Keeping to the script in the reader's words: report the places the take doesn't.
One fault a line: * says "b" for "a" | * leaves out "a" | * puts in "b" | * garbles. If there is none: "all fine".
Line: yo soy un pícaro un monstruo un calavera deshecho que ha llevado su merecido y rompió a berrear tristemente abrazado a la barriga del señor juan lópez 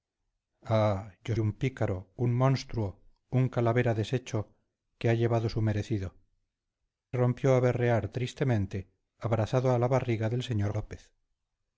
* leaves out "soy"
* leaves out "y"
* leaves out "juan"